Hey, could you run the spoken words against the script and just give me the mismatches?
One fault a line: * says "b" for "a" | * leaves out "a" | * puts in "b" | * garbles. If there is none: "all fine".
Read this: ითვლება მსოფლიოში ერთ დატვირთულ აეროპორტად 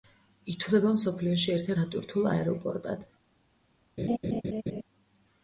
all fine